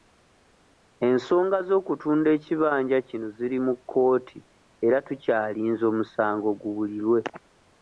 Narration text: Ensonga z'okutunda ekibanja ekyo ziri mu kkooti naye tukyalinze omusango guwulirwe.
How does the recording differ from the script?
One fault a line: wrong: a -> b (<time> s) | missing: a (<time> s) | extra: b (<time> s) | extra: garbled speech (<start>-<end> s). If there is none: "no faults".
wrong: ekyo -> kino (3.1 s)
wrong: naye -> era (4.8 s)